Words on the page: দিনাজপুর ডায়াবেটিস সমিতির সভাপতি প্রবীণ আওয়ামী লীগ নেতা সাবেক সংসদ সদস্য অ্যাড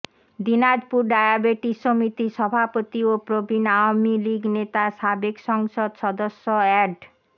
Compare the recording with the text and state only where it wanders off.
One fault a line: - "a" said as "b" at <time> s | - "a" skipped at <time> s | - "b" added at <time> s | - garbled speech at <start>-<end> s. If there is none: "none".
- "ও" added at 3.0 s